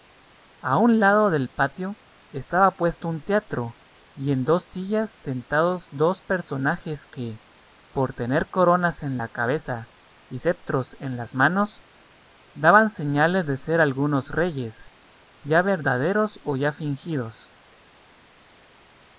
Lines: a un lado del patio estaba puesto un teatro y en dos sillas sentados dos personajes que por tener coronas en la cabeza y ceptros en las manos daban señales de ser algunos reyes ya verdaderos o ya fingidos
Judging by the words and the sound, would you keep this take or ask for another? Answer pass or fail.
pass